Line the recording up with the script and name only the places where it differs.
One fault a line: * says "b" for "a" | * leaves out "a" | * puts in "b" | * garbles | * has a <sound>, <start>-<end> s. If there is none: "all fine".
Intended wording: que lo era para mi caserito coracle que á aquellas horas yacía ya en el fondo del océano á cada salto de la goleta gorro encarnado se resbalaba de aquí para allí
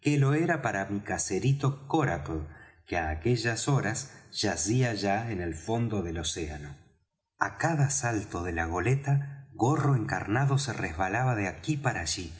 all fine